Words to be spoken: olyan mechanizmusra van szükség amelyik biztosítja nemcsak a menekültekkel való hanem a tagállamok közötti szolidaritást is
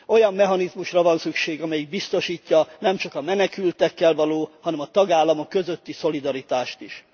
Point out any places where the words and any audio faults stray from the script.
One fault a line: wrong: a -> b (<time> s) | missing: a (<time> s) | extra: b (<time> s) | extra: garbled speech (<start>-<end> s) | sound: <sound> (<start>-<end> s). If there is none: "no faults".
no faults